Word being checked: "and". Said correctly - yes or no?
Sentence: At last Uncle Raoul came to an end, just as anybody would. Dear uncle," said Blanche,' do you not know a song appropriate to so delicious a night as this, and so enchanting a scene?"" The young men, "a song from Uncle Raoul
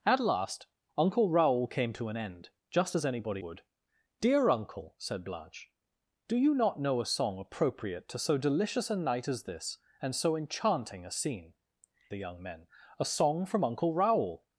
yes